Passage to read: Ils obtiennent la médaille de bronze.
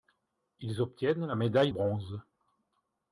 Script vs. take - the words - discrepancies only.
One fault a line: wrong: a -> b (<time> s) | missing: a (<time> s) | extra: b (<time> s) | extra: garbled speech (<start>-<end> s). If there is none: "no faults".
missing: de (1.7 s)